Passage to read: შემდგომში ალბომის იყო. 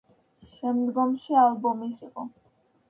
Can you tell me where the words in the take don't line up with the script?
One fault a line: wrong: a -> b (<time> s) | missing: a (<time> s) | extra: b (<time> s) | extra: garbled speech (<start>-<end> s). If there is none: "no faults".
no faults